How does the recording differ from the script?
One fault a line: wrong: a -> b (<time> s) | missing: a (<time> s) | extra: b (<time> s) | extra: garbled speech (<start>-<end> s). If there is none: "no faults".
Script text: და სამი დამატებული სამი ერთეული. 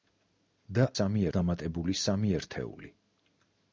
no faults